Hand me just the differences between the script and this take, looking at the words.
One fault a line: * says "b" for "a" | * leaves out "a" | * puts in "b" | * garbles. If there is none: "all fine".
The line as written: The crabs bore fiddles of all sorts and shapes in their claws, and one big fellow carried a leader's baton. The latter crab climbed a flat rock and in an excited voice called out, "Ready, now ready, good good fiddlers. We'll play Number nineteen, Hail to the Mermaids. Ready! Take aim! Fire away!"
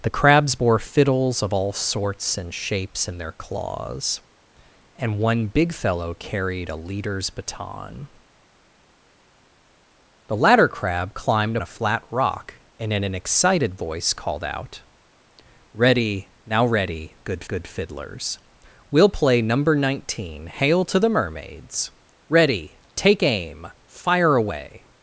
all fine